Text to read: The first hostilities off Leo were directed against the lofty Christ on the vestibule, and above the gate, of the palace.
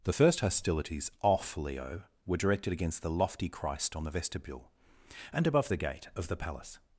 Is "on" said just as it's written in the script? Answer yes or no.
yes